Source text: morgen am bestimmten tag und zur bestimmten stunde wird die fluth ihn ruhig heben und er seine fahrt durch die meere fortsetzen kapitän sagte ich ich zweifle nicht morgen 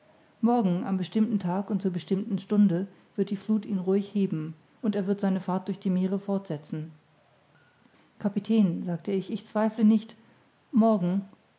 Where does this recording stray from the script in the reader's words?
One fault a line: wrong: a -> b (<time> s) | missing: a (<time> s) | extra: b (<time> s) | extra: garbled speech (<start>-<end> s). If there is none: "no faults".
extra: wird (5.0 s)